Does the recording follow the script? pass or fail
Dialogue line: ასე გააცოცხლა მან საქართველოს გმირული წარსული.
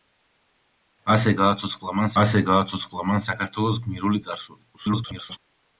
fail